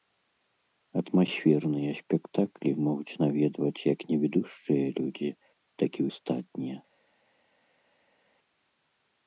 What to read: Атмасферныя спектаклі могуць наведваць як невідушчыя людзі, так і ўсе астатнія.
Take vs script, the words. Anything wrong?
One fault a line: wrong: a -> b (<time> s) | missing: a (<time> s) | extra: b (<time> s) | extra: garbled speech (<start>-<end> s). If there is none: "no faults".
missing: ўсе (6.1 s)